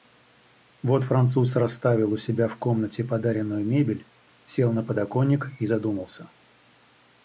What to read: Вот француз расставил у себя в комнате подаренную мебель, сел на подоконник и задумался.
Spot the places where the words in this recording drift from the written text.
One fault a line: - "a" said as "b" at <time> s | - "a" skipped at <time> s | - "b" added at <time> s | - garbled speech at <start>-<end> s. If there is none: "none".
none